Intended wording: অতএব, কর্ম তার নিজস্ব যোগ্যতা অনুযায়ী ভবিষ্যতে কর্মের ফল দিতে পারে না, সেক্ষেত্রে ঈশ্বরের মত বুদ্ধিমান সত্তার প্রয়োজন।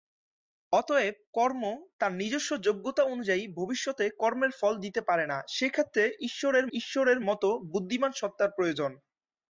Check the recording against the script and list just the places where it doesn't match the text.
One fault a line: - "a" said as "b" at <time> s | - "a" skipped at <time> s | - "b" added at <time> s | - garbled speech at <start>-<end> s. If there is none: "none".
- "ঈশ্বরের" added at 6.7 s